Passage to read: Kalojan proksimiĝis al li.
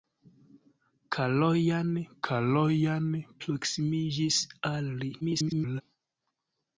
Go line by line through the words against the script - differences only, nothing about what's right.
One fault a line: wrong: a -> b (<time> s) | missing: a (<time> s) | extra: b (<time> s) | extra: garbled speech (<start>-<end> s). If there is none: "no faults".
extra: kalojan (2.3 s)
extra: garbled speech (5.2-5.8 s)